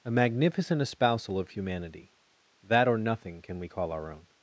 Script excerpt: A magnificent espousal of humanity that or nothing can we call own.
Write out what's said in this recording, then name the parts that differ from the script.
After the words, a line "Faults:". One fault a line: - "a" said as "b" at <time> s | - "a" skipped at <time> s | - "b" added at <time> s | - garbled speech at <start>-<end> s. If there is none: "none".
A magnificent espousal of humanity that or nothing can we call our own.
Faults:
- "our" added at 3.9 s